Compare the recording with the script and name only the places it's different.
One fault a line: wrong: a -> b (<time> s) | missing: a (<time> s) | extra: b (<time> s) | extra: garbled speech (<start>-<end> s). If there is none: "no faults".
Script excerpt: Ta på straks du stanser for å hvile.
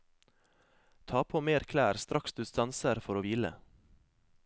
extra: mer klær (1.5 s)